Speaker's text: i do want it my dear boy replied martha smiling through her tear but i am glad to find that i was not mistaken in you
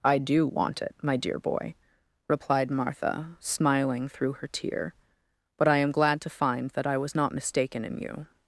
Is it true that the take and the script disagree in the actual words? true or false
false